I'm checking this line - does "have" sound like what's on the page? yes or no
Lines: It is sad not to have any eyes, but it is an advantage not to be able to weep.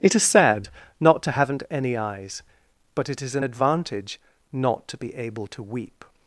no